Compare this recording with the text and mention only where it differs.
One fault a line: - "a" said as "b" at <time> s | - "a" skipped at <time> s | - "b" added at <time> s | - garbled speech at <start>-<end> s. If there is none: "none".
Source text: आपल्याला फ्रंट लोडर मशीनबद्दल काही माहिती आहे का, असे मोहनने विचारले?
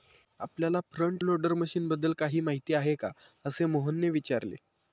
none